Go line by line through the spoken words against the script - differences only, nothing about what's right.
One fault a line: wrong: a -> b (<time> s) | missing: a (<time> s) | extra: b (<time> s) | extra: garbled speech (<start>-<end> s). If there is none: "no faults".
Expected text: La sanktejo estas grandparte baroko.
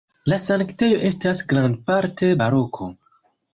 no faults